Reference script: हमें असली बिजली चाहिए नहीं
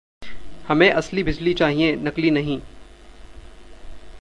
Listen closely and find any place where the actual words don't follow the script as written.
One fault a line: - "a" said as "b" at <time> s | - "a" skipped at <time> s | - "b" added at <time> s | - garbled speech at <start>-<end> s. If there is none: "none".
- "नकली" added at 1.9 s